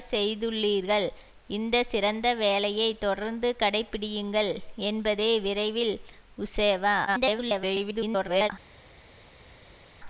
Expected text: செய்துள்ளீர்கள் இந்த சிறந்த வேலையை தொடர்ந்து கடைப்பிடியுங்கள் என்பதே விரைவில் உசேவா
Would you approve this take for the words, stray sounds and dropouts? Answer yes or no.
no